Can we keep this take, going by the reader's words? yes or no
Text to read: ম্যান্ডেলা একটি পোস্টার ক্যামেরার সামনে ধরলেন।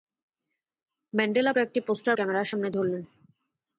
yes